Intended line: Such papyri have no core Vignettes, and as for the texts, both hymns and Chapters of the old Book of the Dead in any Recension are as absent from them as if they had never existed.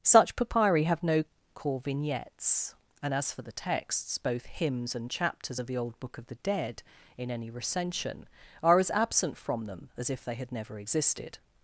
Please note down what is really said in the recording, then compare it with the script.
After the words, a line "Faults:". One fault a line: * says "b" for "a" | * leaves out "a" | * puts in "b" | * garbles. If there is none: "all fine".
Such papyri have no core Vignettes, and as for the texts, both hymns and Chapters of the old Book of the Dead in any Recension are as absent from them as if they had never existed.
Faults:
all fine